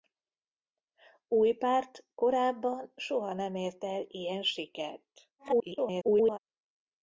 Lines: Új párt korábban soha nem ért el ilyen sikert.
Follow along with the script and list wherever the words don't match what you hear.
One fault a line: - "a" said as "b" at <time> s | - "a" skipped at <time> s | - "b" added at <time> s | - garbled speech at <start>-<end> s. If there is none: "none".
- garbled speech at 5.4-6.4 s